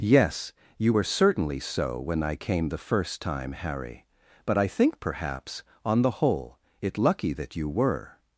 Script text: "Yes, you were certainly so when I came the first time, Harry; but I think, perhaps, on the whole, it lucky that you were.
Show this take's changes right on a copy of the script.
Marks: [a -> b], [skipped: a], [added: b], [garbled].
"Yes, you were certainly so when I came the first time, Harry; but I think, perhaps, on the whole, it lucky that you were.